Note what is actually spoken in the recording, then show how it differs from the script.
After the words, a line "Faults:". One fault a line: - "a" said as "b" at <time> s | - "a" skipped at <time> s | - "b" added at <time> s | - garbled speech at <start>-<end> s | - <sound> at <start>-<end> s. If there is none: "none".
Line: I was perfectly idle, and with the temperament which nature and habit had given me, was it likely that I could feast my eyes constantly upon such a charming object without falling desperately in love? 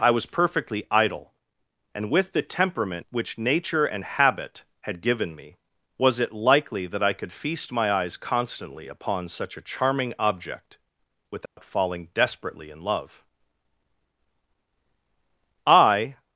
I was perfectly idle, and with the temperament which nature and habit had given me, was it likely that I could feast my eyes constantly upon such a charming object without falling desperately in love? I
Faults:
- dropout at 11.5-11.6 s
- "I" added at 15.7 s